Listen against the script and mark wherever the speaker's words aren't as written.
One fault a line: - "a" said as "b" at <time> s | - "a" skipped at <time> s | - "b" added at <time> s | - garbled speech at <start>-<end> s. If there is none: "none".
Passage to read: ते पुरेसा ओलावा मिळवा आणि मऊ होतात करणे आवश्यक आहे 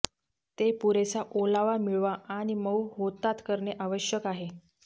none